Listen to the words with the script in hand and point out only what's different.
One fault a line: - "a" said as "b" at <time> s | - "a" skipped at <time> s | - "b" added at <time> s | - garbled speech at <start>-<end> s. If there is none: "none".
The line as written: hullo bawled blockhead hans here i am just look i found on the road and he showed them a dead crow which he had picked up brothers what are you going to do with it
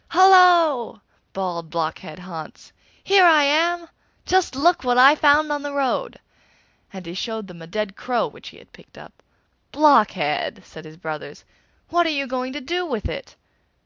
- "what" added at 4.8 s
- "blockhead said his" added at 9.7 s